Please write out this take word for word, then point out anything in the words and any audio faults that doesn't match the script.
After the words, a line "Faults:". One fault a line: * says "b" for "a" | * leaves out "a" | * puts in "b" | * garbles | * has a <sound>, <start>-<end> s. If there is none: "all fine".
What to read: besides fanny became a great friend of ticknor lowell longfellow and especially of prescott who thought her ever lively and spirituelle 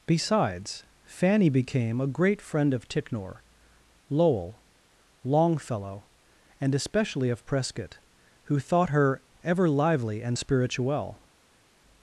besides fanny became a great friend of ticknor lowell longfellow and especially of prescott who thought her ever lively and spirituelle
Faults:
all fine